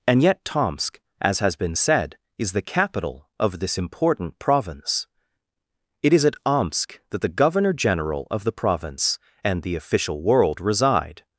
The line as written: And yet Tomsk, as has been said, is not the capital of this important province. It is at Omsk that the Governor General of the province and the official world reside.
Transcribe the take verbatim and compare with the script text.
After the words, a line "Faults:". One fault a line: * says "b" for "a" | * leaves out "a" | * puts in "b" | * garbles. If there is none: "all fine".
And yet Tomsk, as has been said, is the capital of this important province. It is at Omsk that the Governor General of the province and the official world reside.
Faults:
* leaves out "not"